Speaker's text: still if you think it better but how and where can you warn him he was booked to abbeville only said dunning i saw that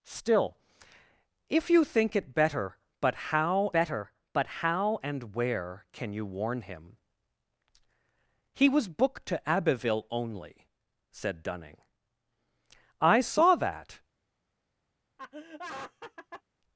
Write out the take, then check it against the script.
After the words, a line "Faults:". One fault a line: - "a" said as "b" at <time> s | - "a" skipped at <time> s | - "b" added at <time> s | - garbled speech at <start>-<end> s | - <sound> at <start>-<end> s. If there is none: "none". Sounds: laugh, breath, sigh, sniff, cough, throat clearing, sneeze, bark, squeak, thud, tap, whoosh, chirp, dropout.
still if you think it better but how better but how and where can you warn him he was booked to abbeville only said dunning i saw that
Faults:
- "better but how" added at 3.7 s
- laugh at 15.2-16.4 s